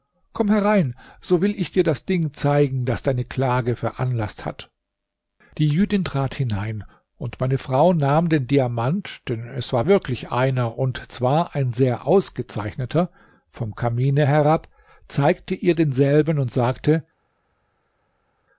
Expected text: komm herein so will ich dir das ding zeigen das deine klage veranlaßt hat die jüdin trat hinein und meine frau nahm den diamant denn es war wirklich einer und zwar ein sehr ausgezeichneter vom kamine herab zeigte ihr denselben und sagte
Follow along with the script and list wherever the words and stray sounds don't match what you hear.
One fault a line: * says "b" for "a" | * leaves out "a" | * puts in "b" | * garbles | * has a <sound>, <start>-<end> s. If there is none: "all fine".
all fine